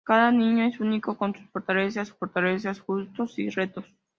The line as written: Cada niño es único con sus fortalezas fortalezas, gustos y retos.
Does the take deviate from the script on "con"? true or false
false